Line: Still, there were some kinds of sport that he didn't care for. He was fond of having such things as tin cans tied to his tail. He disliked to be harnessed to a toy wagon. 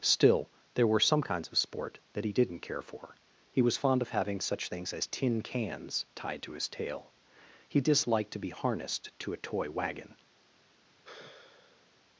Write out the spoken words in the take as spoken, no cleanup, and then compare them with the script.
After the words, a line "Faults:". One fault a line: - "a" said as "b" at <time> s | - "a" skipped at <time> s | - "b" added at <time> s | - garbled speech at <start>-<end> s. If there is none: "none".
Still, there were some kinds of sport that he didn't care for. He was fond of having such things as tin cans tied to his tail. He disliked to be harnessed to a toy wagon.
Faults:
none